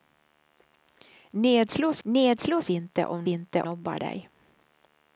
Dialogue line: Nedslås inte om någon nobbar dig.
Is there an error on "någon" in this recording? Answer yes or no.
yes